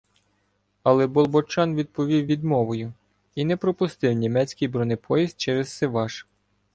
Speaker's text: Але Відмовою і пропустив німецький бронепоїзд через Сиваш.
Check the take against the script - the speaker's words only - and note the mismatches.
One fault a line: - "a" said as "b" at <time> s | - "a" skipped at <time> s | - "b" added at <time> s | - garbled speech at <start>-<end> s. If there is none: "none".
- "Болбочан відповів" added at 1.1 s
- "не" added at 3.4 s